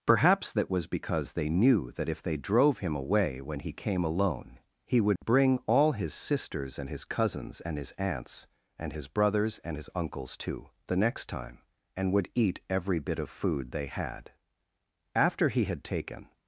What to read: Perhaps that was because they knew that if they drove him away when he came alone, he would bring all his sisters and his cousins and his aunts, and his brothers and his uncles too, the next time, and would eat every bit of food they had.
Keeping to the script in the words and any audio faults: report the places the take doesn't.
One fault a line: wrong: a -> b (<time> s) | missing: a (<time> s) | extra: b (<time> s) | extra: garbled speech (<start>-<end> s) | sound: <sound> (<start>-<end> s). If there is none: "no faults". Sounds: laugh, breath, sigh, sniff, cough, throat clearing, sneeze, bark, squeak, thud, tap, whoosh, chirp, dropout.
sound: dropout (5.2-5.2 s)
extra: After he had taken (15.1 s)